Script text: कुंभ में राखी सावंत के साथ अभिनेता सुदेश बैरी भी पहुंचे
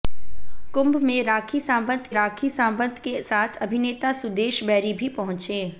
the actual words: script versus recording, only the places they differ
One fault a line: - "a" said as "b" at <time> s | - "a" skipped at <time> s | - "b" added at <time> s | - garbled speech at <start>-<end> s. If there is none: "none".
- "राखी सावंत" added at 2.1 s